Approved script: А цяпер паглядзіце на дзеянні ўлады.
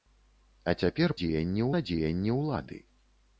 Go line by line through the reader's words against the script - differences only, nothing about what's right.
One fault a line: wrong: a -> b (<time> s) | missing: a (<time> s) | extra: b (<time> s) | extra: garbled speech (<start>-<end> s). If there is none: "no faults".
wrong: паглядзіце -> дзеянні (1.2 s)